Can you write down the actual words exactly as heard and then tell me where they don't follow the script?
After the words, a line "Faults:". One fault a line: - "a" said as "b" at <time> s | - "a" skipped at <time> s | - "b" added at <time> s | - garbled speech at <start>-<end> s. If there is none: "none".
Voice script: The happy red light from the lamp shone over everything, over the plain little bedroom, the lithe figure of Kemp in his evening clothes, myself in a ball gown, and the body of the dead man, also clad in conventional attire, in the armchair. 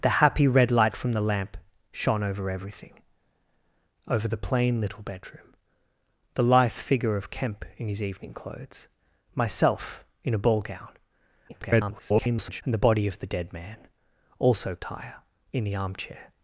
The happy red light from the lamp shone over everything, over the plain little bedroom, the lithe figure of Kemp in his evening clothes, myself in a ball gown, [garbled] and the body of the dead man, also attire, in the armchair.
Faults:
- garbled speech at 11.5-12.6 s
- "clad in conventional" skipped at 14.7 s